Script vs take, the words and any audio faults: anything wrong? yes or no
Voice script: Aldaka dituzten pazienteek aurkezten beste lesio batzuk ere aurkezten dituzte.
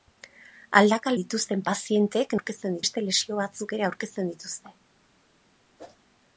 yes